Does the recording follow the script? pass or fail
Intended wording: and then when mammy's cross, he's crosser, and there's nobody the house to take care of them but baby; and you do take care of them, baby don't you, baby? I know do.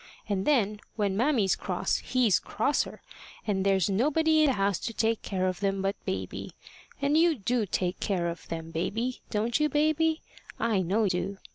pass